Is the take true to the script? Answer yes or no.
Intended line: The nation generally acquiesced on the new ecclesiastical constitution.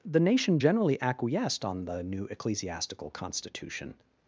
yes